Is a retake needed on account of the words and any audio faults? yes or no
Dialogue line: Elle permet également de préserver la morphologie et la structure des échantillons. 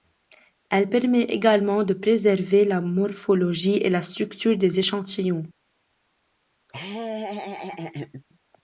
yes